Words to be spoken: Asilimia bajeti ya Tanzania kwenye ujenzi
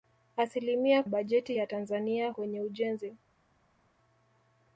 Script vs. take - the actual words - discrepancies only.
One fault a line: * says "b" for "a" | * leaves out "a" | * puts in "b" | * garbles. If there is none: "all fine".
all fine